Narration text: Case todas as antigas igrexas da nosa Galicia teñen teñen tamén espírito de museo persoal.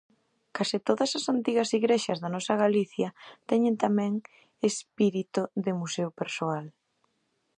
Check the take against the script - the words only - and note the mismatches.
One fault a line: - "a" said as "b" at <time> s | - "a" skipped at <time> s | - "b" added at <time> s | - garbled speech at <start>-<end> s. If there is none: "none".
- "teñen" skipped at 3.8 s